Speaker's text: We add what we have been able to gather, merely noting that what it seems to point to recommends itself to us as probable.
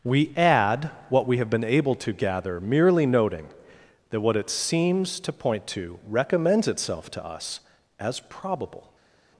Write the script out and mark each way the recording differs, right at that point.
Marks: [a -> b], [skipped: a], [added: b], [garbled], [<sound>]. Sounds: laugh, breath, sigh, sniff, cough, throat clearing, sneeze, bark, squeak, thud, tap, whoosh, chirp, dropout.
We add what we have been able to gather, merely noting that what it seems to point to recommends itself to us as probable.